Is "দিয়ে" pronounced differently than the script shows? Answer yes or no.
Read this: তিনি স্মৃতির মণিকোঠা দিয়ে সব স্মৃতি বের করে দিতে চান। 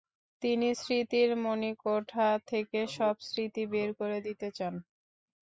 yes